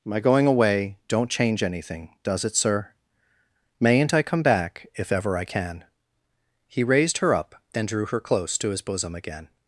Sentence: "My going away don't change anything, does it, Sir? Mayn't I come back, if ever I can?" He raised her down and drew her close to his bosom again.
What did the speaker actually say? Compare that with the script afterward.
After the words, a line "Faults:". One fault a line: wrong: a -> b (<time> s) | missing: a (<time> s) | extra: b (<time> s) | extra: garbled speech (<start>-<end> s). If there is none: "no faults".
"My going away don't change anything, does it, Sir? Mayn't I come back, if ever I can?" He raised her up and drew her close to his bosom again.
Faults:
wrong: down -> up (7.3 s)